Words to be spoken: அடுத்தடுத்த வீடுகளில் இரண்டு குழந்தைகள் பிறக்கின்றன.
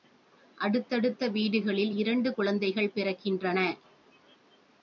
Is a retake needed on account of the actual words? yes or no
no